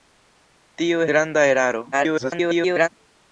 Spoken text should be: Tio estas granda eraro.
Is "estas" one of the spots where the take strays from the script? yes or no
yes